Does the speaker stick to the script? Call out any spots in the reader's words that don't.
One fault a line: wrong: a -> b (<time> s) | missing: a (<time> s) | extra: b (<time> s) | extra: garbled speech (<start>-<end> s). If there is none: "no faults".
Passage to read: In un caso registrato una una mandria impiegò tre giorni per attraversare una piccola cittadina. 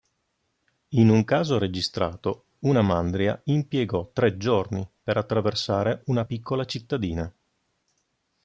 missing: una (2.8 s)